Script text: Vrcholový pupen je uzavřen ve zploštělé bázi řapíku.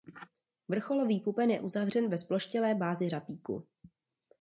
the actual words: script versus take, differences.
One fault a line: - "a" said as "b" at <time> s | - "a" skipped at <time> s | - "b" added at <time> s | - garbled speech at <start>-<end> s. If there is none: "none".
none